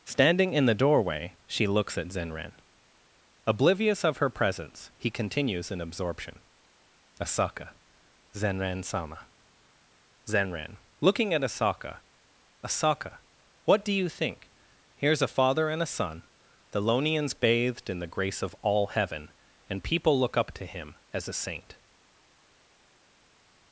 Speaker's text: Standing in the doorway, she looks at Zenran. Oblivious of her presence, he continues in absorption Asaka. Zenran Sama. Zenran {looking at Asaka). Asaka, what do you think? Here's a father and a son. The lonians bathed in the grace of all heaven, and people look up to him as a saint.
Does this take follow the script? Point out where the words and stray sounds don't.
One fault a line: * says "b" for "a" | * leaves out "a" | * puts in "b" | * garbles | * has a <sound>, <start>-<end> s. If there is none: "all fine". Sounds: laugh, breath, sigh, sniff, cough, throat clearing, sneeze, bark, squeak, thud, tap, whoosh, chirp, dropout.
all fine